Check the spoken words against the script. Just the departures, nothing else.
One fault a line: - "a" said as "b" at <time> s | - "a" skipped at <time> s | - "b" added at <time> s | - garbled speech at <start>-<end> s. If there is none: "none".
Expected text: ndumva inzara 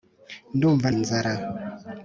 none